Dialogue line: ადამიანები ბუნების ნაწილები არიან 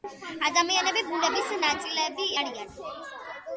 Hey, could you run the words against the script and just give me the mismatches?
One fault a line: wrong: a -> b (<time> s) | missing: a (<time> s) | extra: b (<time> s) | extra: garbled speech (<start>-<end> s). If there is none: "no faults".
no faults